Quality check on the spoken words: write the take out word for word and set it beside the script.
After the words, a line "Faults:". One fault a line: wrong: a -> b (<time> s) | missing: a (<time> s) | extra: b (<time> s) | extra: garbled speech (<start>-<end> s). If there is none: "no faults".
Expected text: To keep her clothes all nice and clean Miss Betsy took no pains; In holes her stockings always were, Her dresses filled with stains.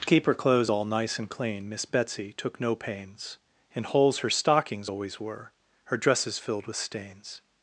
To keep her clothes all nice and clean Miss Betsy took no pains; In holes her stockings always were, Her dresses filled with stains.
Faults:
no faults